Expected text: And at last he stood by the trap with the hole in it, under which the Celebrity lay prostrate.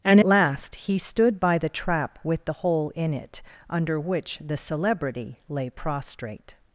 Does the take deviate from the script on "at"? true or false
true